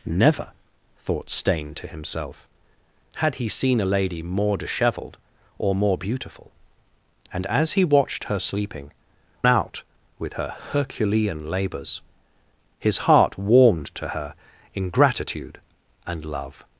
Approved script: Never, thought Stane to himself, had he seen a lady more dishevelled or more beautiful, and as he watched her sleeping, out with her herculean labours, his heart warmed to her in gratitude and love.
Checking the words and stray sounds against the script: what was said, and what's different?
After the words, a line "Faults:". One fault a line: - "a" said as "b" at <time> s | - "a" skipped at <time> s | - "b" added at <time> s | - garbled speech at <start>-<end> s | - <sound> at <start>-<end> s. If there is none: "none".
Never, thought Stane to himself, had he seen a lady more dishevelled or more beautiful, and as he watched her sleeping, out with her herculean labours, his heart warmed to her in gratitude and love.
Faults:
none